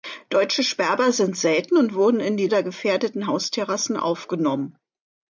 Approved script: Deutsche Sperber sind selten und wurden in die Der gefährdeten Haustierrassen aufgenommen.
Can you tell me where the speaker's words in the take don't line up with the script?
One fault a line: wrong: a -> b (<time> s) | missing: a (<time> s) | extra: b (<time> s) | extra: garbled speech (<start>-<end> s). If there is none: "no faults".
no faults